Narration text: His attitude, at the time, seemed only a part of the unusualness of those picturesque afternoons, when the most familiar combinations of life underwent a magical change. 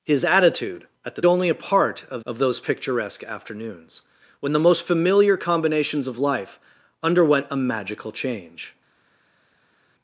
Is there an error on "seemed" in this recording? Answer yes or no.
yes